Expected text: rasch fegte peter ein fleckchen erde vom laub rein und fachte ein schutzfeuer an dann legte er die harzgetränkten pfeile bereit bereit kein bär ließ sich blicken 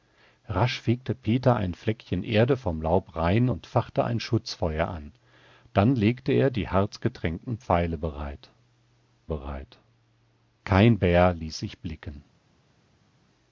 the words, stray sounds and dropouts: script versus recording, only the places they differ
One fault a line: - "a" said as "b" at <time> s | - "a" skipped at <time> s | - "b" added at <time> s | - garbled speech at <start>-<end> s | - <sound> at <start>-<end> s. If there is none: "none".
none